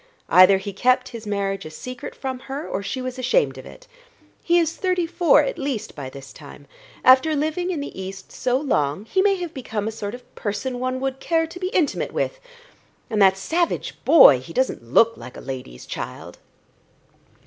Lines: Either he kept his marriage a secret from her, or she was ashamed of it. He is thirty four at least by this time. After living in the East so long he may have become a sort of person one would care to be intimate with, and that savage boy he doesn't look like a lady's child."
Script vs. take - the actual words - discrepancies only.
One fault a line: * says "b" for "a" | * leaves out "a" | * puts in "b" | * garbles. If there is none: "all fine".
all fine